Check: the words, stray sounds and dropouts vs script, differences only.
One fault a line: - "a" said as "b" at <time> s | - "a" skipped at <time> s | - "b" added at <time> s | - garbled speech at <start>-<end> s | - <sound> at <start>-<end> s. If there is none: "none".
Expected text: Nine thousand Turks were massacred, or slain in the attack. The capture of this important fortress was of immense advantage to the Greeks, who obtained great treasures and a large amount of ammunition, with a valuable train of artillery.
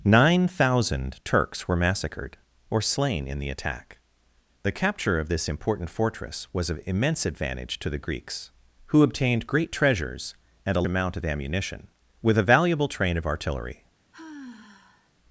- "large" skipped at 10.9 s
- sigh at 14.1-15.1 s